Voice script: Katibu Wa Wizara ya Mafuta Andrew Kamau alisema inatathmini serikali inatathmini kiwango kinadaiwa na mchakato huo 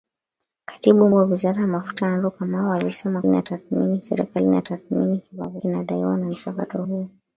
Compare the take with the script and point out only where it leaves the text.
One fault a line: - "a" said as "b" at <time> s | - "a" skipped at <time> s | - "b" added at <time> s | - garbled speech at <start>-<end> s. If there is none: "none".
none